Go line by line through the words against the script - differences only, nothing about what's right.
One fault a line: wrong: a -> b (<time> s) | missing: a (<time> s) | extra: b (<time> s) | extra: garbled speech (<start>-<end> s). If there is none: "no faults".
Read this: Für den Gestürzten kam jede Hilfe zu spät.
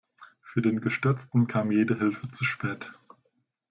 no faults